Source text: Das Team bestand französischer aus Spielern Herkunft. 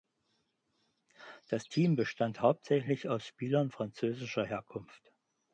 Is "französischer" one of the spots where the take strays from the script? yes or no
yes